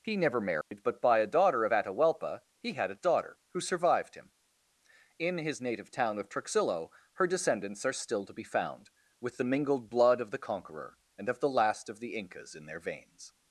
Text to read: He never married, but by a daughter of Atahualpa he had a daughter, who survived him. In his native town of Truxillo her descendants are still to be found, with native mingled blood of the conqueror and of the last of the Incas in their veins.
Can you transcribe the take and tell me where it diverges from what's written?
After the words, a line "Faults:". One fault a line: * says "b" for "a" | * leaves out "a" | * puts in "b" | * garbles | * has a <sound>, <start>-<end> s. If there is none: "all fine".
He never married, but by a daughter of Atahualpa he had a daughter, who survived him. In his native town of Truxillo her descendants are still to be found, with the mingled blood of the conqueror and of the last of the Incas in their veins.
Faults:
* has a dropout, 0.6-0.7 s
* says "the" for "native"